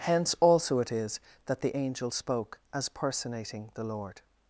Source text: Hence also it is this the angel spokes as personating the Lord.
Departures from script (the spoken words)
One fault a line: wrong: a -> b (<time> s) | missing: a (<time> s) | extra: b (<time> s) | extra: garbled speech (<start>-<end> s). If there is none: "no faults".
wrong: this -> that (1.4 s)
wrong: spokes -> spoke (2.1 s)